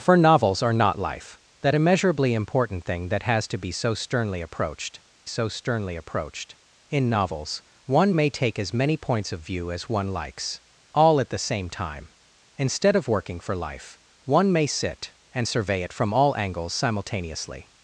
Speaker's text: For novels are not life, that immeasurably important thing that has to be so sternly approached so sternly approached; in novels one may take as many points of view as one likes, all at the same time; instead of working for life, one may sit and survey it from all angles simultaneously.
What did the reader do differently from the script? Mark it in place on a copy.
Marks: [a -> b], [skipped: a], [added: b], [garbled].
For novels are not life, that immeasurably important thing that has to be so sternly approached so sternly approached; in novels one may take as many points of view as one likes, all at the same time; instead of working for life, one may sit and survey it from all angles simultaneously.